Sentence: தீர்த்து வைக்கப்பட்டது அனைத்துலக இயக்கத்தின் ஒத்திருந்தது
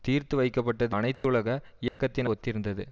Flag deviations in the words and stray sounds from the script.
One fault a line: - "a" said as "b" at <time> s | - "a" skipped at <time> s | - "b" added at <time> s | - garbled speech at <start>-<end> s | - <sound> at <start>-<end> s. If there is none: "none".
- dropout at 1.1-1.2 s
- dropout at 1.9-2.0 s